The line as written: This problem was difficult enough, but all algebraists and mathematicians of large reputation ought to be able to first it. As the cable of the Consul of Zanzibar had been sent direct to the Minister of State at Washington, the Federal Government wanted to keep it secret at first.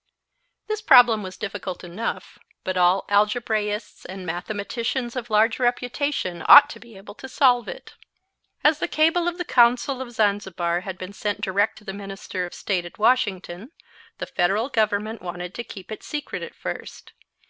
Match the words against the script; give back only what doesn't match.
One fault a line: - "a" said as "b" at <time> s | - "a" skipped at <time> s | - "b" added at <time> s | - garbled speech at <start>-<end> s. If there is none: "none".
- "first" said as "solve" at 7.3 s